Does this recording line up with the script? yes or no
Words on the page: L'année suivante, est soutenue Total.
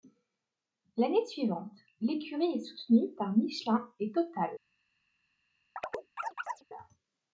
no